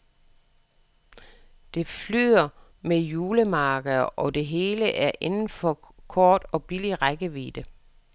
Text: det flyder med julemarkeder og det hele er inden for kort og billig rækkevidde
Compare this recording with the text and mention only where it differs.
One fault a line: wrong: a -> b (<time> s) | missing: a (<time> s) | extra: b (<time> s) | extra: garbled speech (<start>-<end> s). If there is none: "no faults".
no faults